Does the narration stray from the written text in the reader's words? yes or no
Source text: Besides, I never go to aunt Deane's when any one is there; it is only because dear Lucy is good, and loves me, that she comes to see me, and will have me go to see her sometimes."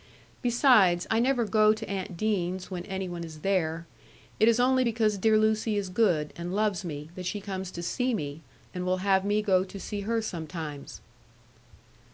no